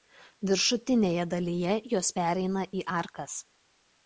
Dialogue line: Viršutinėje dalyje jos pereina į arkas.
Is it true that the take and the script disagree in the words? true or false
false